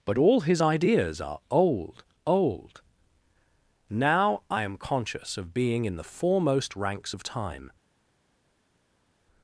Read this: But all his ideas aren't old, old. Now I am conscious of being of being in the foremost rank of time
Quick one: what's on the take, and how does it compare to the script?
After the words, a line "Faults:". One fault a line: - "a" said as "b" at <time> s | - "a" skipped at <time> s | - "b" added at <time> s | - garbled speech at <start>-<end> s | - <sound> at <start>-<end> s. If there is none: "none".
But all his ideas are old, old. Now I am conscious of being in the foremost ranks of time
Faults:
- "aren't" said as "are" at 1.2 s
- "of being" skipped at 5.8 s
- "rank" said as "ranks" at 6.8 s